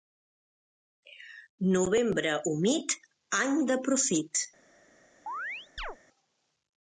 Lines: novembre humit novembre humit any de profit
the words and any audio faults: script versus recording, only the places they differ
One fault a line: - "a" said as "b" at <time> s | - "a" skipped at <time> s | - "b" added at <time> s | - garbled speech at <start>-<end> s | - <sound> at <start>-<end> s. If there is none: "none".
- "novembre humit" skipped at 3.0 s
- chirp at 5.3-6.0 s